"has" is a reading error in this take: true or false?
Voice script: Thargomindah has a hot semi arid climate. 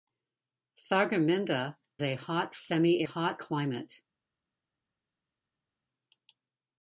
true